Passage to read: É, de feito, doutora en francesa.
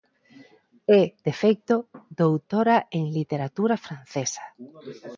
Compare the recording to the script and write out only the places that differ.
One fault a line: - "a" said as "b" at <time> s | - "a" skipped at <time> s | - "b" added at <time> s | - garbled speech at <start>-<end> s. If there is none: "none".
- "literatura" added at 3.1 s